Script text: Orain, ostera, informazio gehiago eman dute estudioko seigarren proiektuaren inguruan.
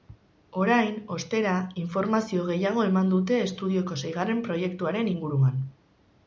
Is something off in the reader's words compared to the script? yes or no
no